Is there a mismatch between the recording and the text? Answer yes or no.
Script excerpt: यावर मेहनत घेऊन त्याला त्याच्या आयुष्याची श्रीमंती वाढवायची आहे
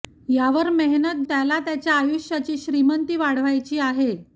yes